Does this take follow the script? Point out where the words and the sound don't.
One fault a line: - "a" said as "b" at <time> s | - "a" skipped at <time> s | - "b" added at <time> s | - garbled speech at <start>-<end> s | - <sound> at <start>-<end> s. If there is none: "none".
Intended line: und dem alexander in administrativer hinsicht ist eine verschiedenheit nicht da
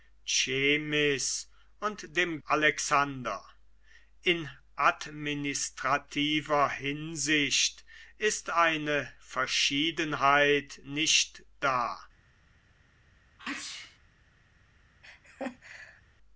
- sneeze at 13.4-14.0 s
- laugh at 15.0-16.0 s